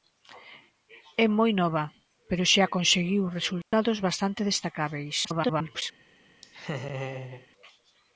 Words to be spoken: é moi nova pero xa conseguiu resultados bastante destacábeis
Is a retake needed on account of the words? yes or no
yes